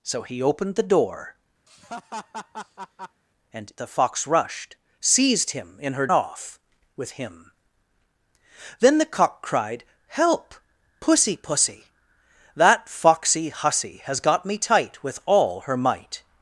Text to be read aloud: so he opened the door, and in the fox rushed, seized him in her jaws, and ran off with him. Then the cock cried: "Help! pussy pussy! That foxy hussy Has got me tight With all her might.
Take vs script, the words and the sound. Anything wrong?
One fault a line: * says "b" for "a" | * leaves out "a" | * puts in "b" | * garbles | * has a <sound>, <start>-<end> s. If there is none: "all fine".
* has a laugh, 1.7-3.2 s
* leaves out "in"
* leaves out "jaws and ran"